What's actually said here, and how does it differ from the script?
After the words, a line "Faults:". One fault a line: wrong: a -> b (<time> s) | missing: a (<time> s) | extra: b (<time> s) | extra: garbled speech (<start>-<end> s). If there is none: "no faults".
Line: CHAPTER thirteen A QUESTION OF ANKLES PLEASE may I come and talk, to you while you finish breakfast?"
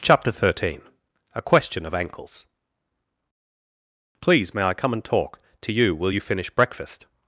CHAPTER thirteen A QUESTION OF ANKLES PLEASE may I come and talk, to you will you finish breakfast?"
Faults:
wrong: while -> will (6.0 s)